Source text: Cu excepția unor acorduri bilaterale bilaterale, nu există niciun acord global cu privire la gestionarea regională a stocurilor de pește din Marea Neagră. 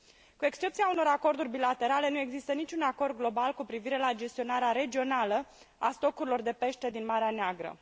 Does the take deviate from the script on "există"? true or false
false